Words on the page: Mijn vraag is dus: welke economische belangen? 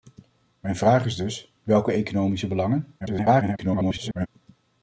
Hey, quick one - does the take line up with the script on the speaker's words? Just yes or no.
no